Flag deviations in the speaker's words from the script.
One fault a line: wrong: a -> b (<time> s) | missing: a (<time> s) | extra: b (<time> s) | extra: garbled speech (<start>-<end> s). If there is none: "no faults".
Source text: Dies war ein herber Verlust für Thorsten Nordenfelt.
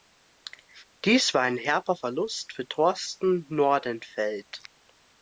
no faults